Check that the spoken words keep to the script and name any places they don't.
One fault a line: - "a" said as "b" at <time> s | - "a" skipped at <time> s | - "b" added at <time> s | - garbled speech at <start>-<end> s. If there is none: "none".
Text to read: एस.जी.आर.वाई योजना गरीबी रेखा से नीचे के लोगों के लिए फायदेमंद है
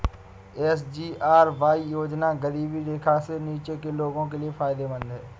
none